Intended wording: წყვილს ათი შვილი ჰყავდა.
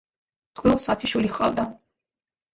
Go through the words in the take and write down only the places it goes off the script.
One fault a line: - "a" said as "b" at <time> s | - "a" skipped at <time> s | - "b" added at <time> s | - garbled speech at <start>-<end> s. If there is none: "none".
none